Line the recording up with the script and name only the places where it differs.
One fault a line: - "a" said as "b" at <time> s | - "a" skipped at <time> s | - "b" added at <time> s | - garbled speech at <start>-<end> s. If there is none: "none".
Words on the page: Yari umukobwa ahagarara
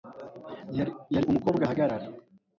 none